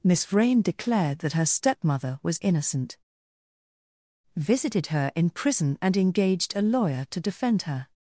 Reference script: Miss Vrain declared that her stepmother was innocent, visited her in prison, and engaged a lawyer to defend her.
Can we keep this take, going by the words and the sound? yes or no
yes